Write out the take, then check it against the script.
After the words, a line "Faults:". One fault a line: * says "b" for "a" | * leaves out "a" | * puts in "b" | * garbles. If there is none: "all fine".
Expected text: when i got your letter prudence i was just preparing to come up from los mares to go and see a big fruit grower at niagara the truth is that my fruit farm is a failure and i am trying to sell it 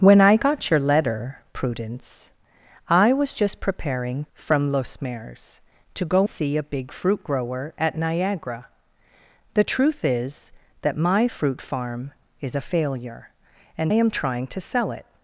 when i got your letter prudence i was just preparing from los mares to go see a big fruit grower at niagara the truth is that my fruit farm is a failure and am trying to sell it
Faults:
* leaves out "to come up"
* leaves out "and"
* leaves out "i"